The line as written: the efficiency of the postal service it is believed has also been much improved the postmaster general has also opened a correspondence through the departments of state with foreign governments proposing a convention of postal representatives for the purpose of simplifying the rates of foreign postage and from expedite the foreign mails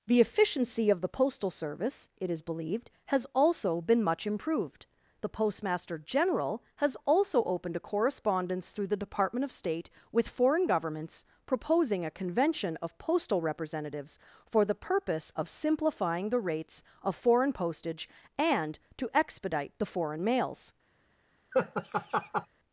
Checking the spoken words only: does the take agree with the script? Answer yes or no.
no